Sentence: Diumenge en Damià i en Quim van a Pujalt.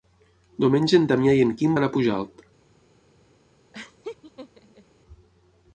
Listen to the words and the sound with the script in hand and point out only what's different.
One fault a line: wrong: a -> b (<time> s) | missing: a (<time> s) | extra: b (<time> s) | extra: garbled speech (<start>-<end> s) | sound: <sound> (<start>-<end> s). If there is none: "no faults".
sound: laugh (3.7-4.9 s)